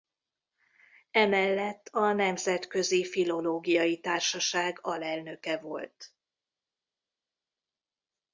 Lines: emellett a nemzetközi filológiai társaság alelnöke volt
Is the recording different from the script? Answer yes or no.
no